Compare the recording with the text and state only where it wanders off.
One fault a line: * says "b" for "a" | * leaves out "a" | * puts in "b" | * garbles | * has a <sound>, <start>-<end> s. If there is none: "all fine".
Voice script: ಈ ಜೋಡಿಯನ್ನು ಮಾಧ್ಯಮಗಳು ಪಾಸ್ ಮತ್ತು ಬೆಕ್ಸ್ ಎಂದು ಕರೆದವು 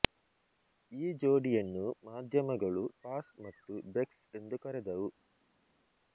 all fine